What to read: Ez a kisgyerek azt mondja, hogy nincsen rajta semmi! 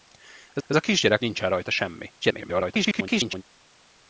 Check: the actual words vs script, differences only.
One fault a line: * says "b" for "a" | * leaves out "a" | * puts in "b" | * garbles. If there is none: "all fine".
* puts in "ez"
* leaves out "azt mondja hogy"
* garbles